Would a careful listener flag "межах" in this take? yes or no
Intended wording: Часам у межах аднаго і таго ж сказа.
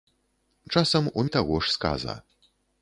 yes